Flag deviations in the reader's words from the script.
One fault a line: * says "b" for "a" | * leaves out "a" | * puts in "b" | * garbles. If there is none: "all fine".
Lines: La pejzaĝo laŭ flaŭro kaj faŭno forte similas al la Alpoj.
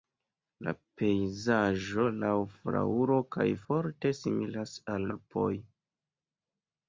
* leaves out "faŭno"
* leaves out "la"